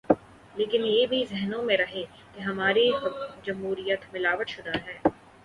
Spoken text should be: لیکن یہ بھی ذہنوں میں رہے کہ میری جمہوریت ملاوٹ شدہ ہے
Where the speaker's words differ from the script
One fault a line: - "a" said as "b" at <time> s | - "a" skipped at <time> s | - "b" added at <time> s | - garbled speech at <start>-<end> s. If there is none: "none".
- "میری" said as "ہماری" at 2.4 s